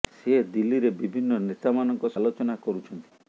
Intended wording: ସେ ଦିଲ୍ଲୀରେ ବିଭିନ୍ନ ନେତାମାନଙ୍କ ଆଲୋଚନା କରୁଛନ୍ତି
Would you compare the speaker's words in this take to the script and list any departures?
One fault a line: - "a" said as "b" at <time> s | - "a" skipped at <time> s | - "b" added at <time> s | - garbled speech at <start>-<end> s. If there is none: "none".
none